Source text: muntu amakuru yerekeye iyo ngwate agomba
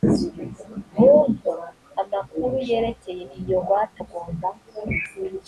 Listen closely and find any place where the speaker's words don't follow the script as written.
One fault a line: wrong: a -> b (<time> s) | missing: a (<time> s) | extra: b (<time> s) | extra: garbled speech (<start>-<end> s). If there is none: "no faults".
no faults